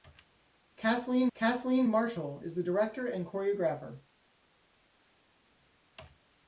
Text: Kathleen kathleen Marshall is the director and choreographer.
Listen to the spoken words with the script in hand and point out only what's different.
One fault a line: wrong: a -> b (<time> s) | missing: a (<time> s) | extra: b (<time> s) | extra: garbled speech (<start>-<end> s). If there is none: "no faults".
no faults